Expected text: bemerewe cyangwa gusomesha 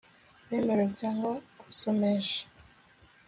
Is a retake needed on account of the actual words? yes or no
no